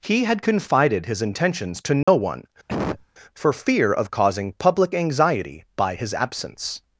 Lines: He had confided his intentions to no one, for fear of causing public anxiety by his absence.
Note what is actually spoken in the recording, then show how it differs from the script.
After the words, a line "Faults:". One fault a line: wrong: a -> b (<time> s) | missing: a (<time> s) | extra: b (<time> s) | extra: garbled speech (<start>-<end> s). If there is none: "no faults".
He had confided his intentions to no one, for fear of causing public anxiety by his absence.
Faults:
no faults